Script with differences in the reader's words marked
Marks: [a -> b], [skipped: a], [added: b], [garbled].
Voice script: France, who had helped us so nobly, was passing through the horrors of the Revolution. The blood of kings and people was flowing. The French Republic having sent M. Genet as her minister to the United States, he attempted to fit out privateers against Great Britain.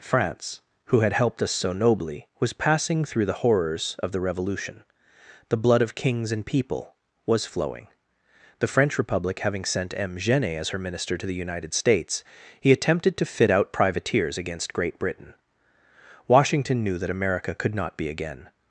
France, who had helped us so nobly, was passing through the horrors of the Revolution. The blood of kings and people was flowing. The French Republic having sent M. Genet as her minister to the United States, he attempted to fit out privateers against Great Britain. [added: Washington knew that America could not be again]